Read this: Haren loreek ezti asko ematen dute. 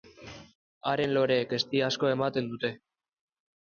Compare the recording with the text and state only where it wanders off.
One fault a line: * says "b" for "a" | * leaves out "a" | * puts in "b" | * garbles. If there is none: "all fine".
all fine